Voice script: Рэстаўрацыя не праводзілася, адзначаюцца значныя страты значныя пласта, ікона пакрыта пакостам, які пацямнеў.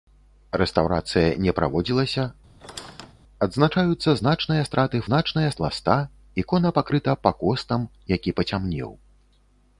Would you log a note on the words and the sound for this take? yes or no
yes